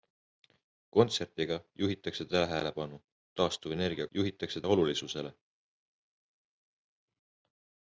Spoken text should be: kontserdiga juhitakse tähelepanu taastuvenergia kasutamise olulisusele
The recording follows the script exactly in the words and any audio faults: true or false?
false